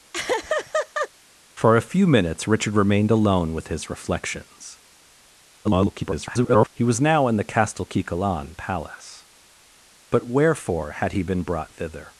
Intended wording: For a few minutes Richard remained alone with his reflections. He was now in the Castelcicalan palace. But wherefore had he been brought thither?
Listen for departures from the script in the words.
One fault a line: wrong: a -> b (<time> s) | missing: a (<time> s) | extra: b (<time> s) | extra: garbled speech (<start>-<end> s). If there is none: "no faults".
extra: garbled speech (5.6-6.7 s)